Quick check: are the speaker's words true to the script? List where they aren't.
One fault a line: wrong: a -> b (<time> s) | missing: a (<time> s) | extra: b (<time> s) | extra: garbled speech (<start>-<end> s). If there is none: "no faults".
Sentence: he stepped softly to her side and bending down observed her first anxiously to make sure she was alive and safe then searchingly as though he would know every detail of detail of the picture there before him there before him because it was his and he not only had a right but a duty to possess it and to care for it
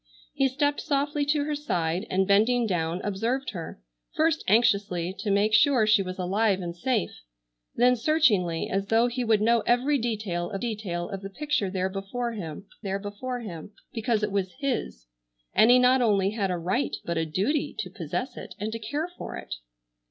no faults